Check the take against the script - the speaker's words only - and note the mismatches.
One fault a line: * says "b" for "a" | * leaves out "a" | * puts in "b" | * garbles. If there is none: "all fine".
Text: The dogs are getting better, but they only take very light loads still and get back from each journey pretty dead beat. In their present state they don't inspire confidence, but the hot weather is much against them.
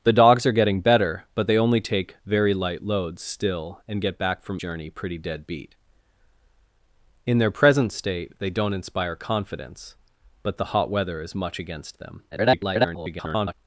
* leaves out "each"
* garbles